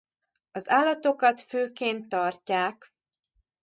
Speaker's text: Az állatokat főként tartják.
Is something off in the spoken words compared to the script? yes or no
no